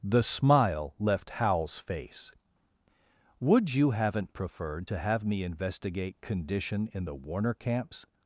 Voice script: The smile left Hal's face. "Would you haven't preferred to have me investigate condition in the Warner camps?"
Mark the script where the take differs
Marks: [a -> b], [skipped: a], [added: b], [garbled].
The smile left Hal's face. "Would you haven't preferred to have me investigate condition in the Warner camps?"